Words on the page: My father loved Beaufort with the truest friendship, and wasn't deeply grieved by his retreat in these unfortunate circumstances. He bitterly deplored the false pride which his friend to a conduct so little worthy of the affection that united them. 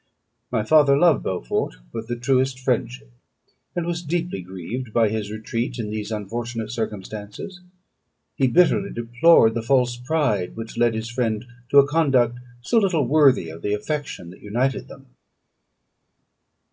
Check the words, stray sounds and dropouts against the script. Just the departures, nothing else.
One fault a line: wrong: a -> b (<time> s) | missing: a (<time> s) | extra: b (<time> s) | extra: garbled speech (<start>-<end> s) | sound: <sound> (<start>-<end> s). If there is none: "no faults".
wrong: wasn't -> was (3.9 s)
extra: led (10.8 s)